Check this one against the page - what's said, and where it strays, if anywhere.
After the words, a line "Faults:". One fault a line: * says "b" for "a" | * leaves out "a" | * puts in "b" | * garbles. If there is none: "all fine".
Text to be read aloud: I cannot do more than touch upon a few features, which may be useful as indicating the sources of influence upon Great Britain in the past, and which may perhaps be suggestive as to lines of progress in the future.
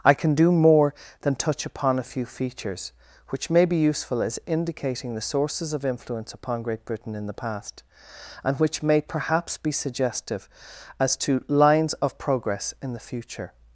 I can do more than touch upon a few features, which may be useful as indicating the sources of influence upon Great Britain in the past, and which may perhaps be suggestive as to lines of progress in the future.
Faults:
* says "can" for "cannot"